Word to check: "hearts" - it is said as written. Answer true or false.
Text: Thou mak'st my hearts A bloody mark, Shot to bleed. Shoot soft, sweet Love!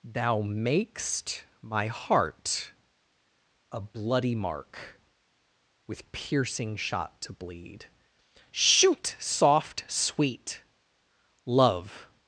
false